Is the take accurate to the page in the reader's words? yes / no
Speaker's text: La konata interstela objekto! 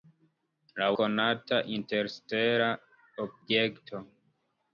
yes